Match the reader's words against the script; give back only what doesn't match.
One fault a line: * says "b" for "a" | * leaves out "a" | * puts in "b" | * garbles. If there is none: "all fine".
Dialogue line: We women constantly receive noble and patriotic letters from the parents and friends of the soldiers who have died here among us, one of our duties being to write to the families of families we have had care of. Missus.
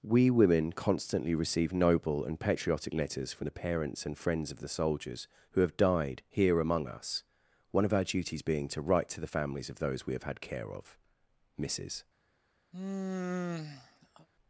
* says "those" for "families"